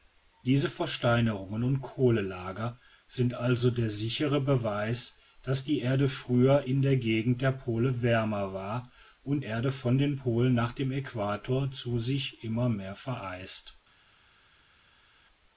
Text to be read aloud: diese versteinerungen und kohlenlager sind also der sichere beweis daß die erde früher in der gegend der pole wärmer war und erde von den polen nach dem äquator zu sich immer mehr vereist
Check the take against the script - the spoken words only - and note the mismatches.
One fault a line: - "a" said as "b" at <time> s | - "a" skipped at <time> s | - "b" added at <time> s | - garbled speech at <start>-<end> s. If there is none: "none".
none